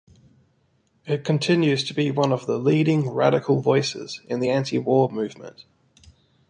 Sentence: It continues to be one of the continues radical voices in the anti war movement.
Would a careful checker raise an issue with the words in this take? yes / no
yes